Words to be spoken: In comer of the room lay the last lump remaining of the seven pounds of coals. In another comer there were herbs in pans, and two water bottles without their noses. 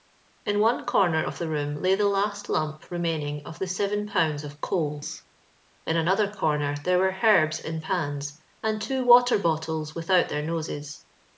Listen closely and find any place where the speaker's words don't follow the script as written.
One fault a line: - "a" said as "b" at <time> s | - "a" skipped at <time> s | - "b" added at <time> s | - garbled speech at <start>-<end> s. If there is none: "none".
- "one" added at 0.6 s